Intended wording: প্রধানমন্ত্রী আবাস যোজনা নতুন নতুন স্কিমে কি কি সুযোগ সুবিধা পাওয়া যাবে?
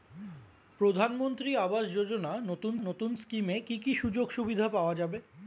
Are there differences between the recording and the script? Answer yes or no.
no